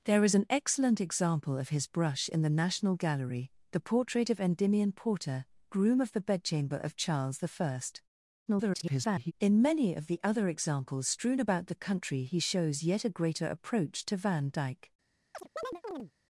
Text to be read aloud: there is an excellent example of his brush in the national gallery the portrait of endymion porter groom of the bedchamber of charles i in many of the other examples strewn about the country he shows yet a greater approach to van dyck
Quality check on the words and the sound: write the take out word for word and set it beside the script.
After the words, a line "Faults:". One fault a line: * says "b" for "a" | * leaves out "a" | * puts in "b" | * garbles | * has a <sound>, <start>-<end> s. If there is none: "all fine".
there is an excellent example of his brush in the national gallery the portrait of endymion porter groom of the bedchamber of charles i [garbled] in many of the other examples strewn about the country he shows yet a greater approach to van dyck
Faults:
* garbles
* has a chirp, 15.3-16.1 s